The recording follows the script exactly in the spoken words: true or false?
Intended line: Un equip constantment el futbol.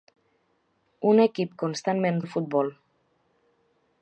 true